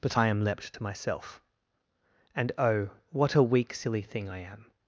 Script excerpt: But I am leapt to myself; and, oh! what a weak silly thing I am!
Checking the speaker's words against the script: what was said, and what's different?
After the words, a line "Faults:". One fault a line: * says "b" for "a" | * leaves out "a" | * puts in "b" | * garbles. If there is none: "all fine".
But I am leapt to myself; and, oh! what a weak silly thing I am!
Faults:
all fine